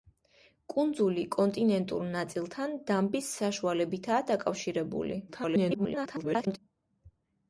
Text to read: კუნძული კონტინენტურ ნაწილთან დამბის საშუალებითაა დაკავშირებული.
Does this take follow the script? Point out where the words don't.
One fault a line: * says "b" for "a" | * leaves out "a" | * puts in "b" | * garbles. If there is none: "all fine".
* garbles